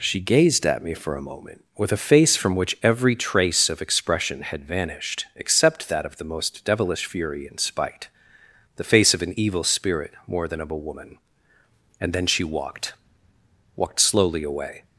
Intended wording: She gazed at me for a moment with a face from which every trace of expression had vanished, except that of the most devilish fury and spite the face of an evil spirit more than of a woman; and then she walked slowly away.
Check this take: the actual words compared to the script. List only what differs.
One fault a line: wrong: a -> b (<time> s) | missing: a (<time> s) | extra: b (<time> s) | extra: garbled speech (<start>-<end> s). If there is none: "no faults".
extra: walked (13.8 s)